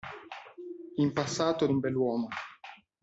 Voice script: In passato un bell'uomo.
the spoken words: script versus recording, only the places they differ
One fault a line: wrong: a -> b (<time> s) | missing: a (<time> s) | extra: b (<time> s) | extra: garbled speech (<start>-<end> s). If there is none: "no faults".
no faults